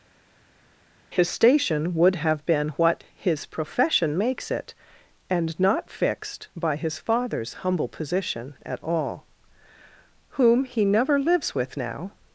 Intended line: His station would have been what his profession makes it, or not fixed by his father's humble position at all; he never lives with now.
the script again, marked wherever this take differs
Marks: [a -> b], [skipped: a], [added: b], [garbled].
His station would have been what his profession makes it, [or -> and] not fixed by his father's humble position at all; [added: whom] he never lives with now.